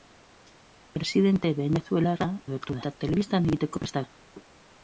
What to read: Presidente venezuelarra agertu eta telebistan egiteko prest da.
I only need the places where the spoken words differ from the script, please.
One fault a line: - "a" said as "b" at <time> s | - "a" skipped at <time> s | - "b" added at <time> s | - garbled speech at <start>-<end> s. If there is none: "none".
none